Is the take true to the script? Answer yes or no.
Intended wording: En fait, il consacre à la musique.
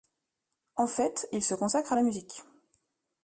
no